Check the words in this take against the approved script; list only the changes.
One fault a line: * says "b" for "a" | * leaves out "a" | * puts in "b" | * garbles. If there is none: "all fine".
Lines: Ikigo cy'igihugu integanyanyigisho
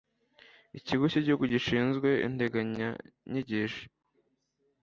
* puts in "gishinzwe"